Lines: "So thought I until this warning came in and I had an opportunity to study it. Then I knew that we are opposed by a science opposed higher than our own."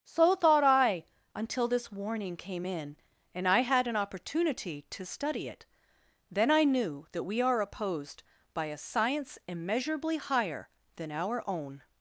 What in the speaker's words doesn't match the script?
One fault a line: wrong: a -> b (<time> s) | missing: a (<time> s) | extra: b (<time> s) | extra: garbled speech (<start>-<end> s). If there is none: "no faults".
wrong: opposed -> immeasurably (9.5 s)